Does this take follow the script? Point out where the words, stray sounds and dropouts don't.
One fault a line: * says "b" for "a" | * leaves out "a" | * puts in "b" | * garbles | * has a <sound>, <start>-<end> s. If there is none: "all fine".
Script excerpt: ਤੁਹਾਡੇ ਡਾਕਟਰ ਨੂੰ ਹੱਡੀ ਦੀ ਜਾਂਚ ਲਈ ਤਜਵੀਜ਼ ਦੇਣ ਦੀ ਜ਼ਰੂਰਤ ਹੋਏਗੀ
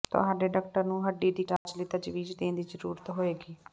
* has a dropout, 1.6-1.7 s